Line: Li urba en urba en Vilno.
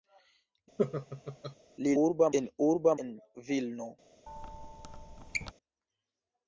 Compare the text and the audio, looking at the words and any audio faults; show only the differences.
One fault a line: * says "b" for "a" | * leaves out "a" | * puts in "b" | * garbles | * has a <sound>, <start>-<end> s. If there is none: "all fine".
* has a laugh, 0.8-1.6 s
* has a squeak, 4.3-5.5 s